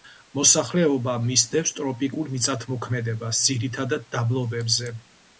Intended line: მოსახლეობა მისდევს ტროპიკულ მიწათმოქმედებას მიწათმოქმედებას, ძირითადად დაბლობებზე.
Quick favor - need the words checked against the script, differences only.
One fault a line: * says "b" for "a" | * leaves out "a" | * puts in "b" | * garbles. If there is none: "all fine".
* leaves out "მიწათმოქმედებას"